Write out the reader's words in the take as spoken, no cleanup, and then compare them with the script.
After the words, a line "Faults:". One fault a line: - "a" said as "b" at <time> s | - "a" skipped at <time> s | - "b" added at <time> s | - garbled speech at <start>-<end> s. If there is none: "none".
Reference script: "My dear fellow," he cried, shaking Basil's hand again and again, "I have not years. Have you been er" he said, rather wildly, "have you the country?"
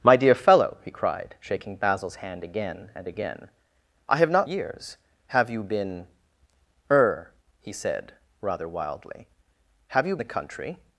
"My dear fellow," he cried, shaking Basil's hand again and again, "I have not years. Have you been er" he said, rather wildly, "have you the country?"
Faults:
none